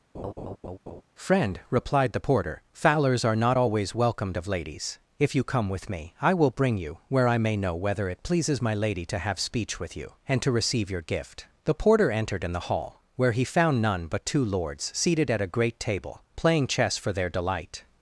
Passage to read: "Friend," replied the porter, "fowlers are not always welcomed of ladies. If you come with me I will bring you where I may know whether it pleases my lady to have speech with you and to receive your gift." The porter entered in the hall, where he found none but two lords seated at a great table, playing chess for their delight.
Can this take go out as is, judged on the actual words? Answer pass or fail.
pass